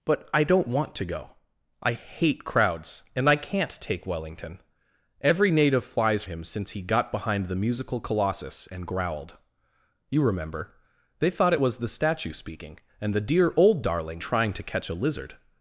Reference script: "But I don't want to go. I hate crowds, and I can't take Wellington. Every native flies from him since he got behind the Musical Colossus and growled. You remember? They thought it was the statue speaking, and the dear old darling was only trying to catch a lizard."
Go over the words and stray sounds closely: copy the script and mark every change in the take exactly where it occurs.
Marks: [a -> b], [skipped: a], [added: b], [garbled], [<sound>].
"But I don't want to go. I hate crowds, and I can't take Wellington. Every native flies [skipped: from] him since he got behind the Musical Colossus and growled. You remember? They thought it was the statue speaking, and the dear old darling [skipped: was only] trying to catch a lizard."